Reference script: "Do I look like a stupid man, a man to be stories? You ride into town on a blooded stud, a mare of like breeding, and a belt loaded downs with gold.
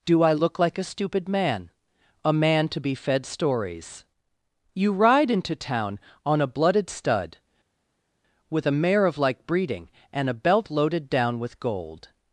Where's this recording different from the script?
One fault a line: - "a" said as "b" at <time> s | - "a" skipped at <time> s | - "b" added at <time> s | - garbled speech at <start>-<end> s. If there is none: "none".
- "fed" added at 3.0 s
- "with" added at 8.5 s
- "downs" said as "down" at 11.1 s